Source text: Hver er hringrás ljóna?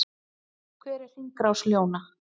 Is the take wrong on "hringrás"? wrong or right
right